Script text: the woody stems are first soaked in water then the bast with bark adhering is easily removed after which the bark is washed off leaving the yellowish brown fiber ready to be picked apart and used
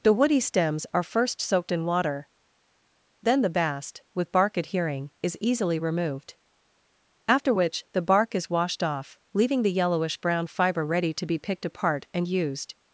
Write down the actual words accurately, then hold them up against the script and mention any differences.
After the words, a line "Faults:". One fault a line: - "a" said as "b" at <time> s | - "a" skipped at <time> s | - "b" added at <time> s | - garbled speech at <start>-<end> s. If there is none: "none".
the woody stems are first soaked in water then the bast with bark adhering is easily removed after which the bark is washed off leaving the yellowish brown fiber ready to be picked apart and used
Faults:
none